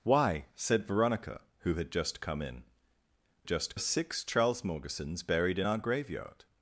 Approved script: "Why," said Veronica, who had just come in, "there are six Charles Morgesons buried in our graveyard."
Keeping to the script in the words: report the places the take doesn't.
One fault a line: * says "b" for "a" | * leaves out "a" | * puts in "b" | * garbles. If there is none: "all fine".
* says "just" for "there"